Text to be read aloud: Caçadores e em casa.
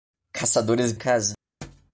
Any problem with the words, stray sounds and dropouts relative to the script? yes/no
yes